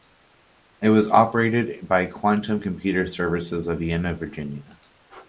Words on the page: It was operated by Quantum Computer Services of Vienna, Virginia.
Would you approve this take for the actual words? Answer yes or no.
yes